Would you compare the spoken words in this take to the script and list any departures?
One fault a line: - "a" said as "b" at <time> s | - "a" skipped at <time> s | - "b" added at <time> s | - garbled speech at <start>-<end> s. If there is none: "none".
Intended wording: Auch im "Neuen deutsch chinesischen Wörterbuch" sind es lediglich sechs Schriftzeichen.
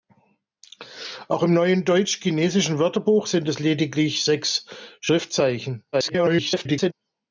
- garbled speech at 5.9-6.9 s